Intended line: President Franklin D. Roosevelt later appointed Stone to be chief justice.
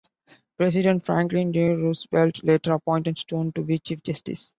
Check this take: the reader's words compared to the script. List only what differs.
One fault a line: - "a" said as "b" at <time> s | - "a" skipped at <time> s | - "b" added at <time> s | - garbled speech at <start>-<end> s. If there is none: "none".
none